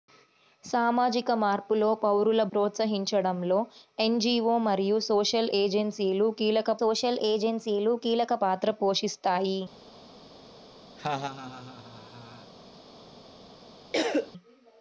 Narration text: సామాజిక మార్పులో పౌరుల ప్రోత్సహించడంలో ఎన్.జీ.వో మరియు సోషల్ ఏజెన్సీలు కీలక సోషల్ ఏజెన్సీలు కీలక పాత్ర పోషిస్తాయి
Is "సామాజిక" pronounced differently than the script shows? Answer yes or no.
no